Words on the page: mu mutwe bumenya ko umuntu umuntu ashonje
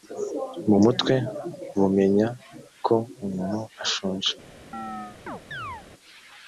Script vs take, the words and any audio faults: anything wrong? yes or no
yes